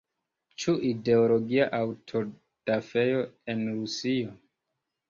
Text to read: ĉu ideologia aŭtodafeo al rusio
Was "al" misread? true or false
true